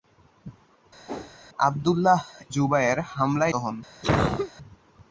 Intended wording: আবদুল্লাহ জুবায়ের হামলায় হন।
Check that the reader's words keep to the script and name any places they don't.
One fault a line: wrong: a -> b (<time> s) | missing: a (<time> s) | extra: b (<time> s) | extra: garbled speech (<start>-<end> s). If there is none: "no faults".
no faults